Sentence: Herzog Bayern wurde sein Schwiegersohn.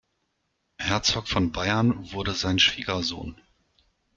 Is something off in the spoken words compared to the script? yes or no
yes